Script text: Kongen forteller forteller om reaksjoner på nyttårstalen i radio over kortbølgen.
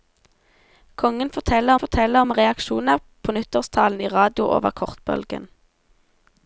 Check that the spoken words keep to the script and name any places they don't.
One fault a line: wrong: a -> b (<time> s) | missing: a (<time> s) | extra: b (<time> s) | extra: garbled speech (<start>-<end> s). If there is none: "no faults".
no faults